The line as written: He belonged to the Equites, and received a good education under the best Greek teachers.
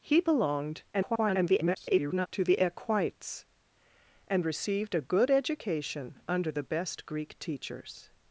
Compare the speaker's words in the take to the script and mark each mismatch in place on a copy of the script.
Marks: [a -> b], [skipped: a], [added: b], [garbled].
He belonged [garbled] to the Equites, and received a good education under the best Greek teachers.